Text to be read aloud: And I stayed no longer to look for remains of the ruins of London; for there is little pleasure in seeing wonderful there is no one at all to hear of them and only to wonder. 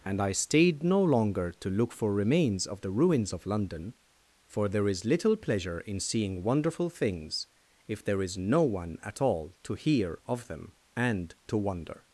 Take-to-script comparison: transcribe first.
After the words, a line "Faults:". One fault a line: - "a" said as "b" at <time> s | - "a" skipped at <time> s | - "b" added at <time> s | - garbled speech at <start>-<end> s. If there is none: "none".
And I stayed no longer to look for remains of the ruins of London; for there is little pleasure in seeing wonderful things if there is no one at all to hear of them and to wonder.
Faults:
- "things if" added at 6.9 s
- "only" skipped at 11.4 s